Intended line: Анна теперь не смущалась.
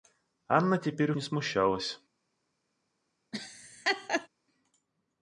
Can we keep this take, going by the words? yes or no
yes